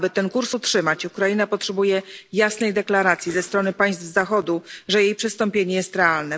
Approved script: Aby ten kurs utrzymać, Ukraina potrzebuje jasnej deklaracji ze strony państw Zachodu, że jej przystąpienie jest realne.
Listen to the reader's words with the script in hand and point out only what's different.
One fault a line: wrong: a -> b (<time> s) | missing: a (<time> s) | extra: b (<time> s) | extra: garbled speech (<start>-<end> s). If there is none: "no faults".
no faults